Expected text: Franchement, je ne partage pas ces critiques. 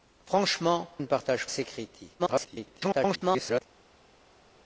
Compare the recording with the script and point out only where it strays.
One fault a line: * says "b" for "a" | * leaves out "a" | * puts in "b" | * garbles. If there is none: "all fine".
* leaves out "je"
* leaves out "pas"
* garbles